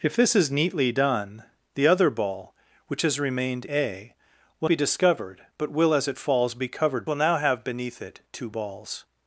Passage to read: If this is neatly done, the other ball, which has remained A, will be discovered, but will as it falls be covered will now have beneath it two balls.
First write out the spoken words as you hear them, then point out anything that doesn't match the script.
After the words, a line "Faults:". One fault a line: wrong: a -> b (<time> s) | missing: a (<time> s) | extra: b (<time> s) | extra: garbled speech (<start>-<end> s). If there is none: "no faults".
If this is neatly done, the other ball, which has remained A, will be discovered, but will as it falls be covered will now have beneath it two balls.
Faults:
no faults